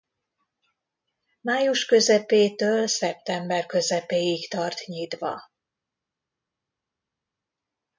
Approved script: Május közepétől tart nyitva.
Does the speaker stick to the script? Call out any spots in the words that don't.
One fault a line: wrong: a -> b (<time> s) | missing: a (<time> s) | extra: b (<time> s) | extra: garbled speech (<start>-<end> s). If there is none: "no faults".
extra: szeptember közepéig (2.8 s)